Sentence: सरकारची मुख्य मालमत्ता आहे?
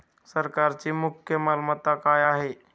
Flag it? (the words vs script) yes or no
yes